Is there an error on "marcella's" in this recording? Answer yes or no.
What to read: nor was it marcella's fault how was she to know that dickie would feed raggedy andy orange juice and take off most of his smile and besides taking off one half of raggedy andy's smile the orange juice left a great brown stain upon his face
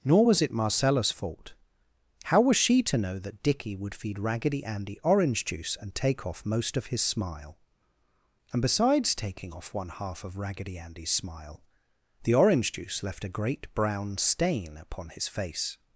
no